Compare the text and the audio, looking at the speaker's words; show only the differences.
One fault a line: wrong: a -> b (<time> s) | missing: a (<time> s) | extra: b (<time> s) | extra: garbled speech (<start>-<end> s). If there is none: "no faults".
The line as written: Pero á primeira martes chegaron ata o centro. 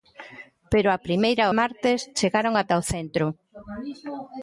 no faults